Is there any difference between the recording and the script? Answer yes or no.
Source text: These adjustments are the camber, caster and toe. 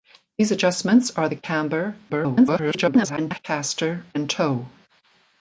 yes